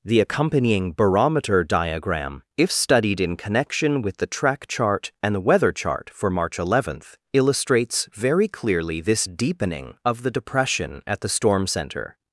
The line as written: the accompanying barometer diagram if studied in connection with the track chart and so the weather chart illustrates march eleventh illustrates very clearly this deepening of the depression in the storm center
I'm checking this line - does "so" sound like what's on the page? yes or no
no